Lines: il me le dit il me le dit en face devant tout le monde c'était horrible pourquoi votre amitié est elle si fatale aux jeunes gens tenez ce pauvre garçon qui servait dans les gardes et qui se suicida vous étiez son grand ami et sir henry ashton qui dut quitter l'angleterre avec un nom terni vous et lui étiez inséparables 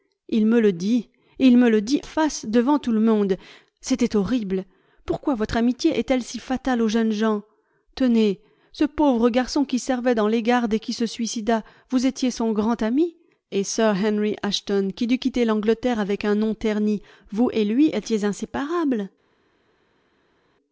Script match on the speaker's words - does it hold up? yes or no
no